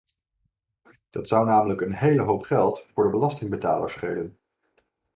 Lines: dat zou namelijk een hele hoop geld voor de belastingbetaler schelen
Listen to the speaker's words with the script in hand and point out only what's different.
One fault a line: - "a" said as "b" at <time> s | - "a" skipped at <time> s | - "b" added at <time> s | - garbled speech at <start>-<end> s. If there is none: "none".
none